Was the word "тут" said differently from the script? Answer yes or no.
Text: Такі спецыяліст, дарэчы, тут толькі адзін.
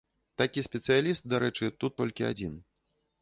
no